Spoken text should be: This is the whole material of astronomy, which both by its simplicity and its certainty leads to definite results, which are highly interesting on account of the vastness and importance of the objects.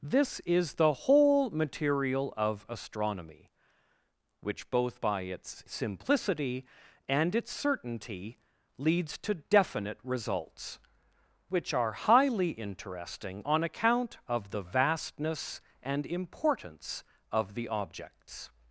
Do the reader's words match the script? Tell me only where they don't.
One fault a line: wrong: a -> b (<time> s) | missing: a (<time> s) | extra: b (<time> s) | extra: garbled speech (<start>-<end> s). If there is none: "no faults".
no faults